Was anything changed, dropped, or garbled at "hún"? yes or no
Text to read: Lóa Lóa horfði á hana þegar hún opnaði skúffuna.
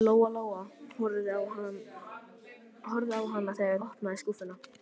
yes